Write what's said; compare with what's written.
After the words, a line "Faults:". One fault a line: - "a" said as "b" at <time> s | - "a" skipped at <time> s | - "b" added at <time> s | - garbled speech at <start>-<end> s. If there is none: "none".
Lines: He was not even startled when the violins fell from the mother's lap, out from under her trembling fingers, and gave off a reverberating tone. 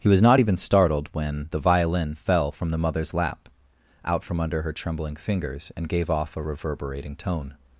He was not even startled when the violin fell from the mother's lap, out from under her trembling fingers, and gave off a reverberating tone.
Faults:
- "violins" said as "violin" at 1.6 s